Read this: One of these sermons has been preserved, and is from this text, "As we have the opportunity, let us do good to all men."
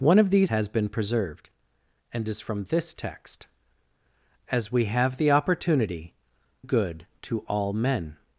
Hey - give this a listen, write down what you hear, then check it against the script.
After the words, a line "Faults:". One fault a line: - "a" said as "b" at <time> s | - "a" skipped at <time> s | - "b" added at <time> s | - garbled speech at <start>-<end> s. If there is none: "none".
One of these has been preserved, and is from this text, "As we have the opportunity, good to all men."
Faults:
- "sermons" skipped at 0.5 s
- "let us do" skipped at 6.1 s